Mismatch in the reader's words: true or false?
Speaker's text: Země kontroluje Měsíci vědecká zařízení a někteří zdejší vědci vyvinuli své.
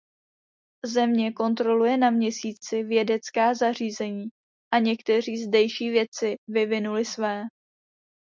true